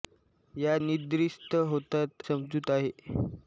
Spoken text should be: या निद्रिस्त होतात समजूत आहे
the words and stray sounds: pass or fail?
pass